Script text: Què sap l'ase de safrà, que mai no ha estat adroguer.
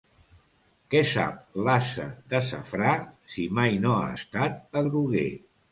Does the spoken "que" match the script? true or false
false